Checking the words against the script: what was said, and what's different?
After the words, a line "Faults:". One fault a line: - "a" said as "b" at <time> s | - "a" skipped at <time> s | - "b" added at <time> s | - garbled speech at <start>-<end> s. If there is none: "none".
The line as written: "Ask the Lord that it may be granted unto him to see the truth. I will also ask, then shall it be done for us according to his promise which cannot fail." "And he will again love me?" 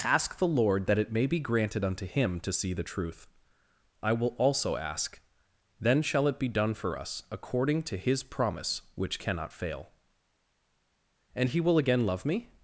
"Ask the Lord that it may be granted unto him to see the truth. I will also ask, then shall it be done for us according to his promise which cannot fail." "And he will again love me?"
Faults:
none